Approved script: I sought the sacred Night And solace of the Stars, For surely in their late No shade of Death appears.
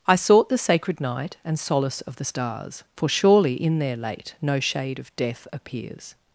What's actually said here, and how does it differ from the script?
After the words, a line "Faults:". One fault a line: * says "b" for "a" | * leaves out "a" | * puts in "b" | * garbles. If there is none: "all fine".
I sought the sacred Night And solace of the Stars, For surely in their late No shade of Death appears.
Faults:
all fine